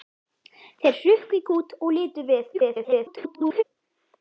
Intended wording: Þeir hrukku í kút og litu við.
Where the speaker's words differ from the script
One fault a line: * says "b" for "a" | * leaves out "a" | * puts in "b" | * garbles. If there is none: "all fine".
* garbles